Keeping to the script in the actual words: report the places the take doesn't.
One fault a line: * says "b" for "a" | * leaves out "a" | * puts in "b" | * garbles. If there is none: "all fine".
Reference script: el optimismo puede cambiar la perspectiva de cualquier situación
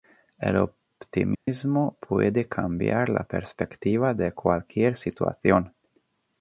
all fine